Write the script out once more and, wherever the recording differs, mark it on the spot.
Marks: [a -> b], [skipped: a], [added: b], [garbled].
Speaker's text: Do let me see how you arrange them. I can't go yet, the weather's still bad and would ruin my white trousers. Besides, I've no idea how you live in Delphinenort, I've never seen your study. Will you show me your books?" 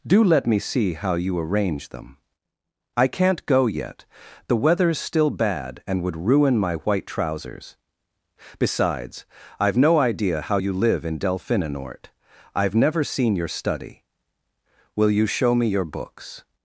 Do let me see how you arrange them. I can't go yet, the weather's still bad and would ruin my white trousers. Besides, I've no idea how you live in Delphinenort, I've never seen your study. Will you show me your books?"